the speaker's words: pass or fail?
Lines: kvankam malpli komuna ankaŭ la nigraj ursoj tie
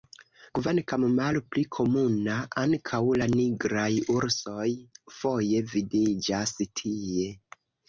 fail